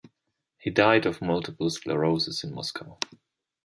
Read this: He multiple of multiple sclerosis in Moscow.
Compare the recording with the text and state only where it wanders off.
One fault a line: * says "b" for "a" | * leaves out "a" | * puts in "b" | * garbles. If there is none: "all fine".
* says "died" for "multiple"